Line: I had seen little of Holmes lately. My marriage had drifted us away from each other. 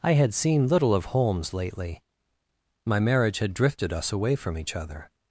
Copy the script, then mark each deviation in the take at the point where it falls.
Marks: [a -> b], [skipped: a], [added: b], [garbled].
I had seen little of Holmes lately. My marriage had drifted us away from each other.